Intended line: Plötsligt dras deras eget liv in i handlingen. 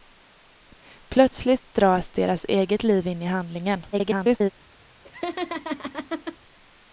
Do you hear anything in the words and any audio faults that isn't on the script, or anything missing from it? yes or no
yes